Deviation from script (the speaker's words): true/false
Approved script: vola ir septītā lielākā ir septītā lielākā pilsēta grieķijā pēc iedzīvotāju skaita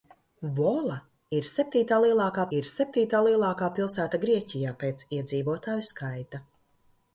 false